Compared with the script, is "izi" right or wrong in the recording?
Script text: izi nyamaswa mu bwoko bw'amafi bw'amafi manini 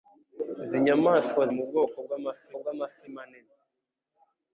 right